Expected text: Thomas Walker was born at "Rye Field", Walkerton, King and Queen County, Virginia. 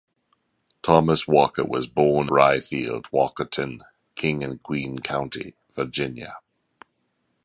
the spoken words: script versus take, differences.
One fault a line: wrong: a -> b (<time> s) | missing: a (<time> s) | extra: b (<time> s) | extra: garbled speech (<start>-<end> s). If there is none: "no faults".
missing: at (2.3 s)